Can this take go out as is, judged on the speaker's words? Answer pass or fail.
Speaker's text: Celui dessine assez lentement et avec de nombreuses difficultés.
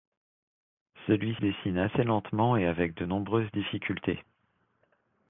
pass